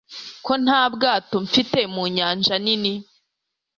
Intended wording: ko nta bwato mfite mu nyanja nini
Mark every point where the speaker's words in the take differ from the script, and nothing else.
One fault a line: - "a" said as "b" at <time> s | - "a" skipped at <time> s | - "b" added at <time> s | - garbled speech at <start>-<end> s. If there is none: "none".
none